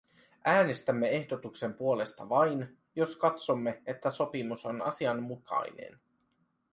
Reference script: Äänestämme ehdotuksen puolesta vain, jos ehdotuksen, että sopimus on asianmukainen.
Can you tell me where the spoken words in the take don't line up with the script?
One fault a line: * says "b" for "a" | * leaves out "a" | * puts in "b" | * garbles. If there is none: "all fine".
* says "katsomme" for "ehdotuksen"